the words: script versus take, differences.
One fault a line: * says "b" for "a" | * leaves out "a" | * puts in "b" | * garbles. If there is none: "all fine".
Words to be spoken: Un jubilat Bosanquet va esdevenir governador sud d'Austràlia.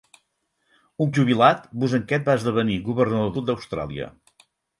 all fine